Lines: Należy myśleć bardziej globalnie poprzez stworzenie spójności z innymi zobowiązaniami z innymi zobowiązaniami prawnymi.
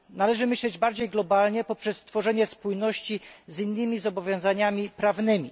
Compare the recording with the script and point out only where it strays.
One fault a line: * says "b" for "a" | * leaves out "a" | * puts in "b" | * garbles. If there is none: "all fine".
* leaves out "z innymi zobowiązaniami"